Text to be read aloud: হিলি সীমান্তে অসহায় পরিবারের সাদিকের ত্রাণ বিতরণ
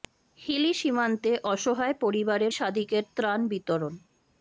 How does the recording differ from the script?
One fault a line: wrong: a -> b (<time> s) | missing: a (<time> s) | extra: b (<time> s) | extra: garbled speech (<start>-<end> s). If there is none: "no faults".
no faults